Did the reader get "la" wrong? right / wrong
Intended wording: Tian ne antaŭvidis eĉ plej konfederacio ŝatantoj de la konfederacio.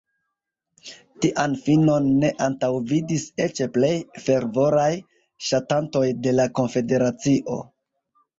right